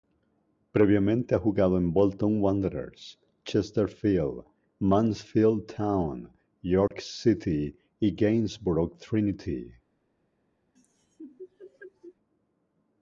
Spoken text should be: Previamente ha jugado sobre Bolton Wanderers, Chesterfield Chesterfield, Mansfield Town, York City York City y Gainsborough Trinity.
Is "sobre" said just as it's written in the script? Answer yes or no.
no